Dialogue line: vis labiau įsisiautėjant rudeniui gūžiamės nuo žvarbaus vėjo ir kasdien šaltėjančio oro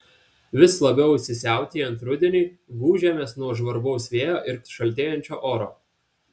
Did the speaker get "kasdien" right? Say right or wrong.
wrong